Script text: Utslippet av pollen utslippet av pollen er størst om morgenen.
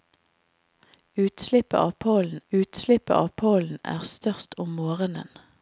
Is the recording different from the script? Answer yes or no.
no